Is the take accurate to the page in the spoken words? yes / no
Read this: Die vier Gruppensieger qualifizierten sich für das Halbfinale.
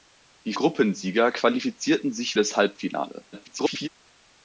no